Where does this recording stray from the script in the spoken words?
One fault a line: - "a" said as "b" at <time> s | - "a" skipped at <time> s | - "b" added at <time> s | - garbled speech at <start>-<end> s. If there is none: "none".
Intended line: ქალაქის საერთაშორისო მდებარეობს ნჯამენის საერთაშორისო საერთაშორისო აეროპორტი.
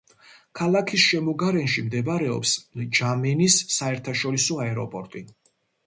- "საერთაშორისო" said as "შემოგარენში" at 1.1 s
- "საერთაშორისო" skipped at 4.6 s